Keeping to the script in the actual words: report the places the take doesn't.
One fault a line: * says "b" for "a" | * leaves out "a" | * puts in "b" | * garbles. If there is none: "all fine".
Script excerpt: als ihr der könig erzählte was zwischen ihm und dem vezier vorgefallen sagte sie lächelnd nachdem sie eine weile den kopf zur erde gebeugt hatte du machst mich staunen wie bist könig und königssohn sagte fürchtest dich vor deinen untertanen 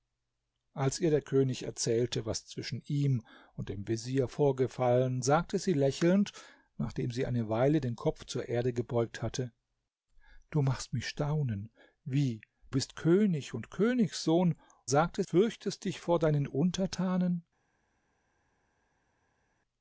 all fine